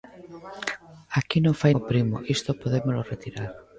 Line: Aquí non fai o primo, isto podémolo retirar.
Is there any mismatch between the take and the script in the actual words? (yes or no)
no